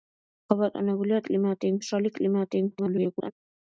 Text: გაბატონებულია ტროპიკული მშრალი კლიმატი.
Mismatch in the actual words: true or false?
true